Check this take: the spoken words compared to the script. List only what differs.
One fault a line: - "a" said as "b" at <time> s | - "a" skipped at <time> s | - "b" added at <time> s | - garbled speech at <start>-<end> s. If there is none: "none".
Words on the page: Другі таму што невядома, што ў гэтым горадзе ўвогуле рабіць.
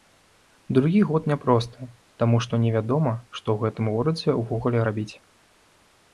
- "год няпросты" added at 1.1 s